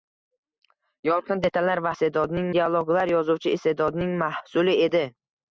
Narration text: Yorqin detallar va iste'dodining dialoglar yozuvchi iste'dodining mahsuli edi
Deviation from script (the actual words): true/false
false